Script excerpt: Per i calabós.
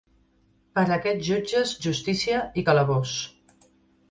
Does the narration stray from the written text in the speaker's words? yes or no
yes